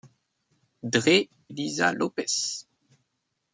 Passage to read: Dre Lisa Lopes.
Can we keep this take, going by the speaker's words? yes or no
yes